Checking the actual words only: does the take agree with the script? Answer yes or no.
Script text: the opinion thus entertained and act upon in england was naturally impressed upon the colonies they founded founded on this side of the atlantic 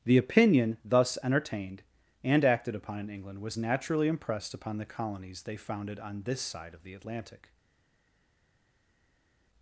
no